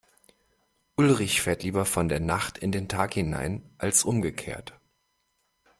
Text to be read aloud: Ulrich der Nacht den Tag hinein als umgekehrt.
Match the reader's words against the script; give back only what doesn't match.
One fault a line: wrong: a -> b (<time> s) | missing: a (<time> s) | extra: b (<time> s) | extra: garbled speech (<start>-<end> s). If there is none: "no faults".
extra: fährt lieber von (1.4 s)
extra: in (2.6 s)